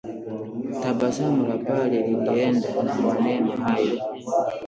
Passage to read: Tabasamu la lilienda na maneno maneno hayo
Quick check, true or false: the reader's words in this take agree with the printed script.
false